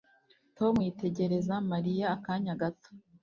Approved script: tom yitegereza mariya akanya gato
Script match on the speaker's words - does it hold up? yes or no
yes